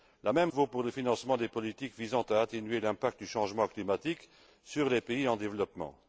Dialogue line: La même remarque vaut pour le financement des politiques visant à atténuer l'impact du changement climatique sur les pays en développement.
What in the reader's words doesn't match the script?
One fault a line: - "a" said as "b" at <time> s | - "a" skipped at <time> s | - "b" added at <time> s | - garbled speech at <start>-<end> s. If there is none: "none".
- "remarque" skipped at 0.5 s